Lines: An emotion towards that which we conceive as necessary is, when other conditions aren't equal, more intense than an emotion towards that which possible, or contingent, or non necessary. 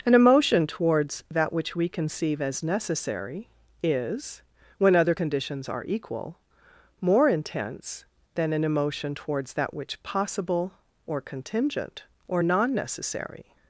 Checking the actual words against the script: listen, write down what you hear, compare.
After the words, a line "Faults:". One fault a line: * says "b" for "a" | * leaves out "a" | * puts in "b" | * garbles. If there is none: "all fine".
An emotion towards that which we conceive as necessary is, when other conditions are equal, more intense than an emotion towards that which possible, or contingent, or non necessary.
Faults:
* says "are" for "aren't"